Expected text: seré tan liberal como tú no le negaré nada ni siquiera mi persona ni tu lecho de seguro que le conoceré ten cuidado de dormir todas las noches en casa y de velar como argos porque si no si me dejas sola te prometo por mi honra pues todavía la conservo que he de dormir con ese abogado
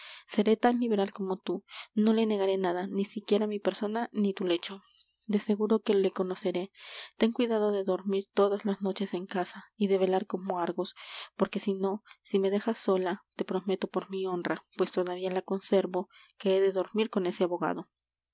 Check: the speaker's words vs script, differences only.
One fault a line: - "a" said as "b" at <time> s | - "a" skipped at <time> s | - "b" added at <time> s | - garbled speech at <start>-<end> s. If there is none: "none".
none